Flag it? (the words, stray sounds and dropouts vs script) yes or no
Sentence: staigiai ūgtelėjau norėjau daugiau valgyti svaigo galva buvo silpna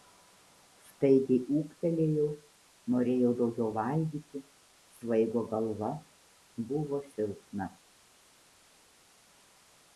no